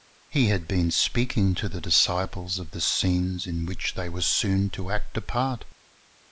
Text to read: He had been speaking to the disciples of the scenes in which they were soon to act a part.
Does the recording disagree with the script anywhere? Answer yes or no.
no